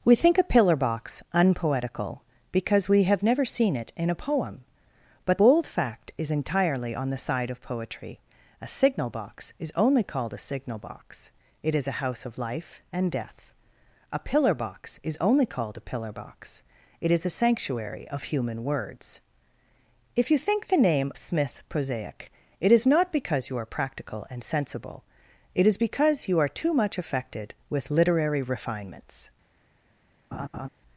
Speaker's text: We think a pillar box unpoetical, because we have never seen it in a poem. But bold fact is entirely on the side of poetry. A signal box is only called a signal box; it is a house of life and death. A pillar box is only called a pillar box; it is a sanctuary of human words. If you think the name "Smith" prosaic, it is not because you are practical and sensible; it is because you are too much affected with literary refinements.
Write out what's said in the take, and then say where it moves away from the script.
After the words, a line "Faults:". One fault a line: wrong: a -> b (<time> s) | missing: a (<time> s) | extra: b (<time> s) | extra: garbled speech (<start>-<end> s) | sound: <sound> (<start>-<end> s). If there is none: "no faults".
We think a pillar box unpoetical, because we have never seen it in a poem. But bold fact is entirely on the side of poetry. A signal box is only called a signal box; it is a house of life and death. A pillar box is only called a pillar box; it is a sanctuary of human words. If you think the name "Smith" prosaic, it is not because you are practical and sensible; it is because you are too much affected with literary refinements.
Faults:
sound: laugh (30.3-30.7 s)